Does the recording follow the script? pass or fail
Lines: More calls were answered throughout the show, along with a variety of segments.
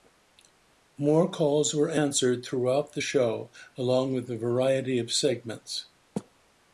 pass